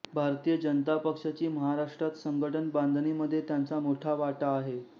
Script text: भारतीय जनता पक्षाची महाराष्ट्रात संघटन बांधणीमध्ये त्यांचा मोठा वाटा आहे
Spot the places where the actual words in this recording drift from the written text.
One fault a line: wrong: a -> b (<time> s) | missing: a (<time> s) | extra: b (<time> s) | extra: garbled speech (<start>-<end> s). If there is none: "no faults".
no faults